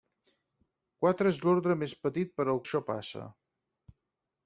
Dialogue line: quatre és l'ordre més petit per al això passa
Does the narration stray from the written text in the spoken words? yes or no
no